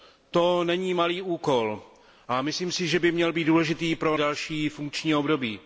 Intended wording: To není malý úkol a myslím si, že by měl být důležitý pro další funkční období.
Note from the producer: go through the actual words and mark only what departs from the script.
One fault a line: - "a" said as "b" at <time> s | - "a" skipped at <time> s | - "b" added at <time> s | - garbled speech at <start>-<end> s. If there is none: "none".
none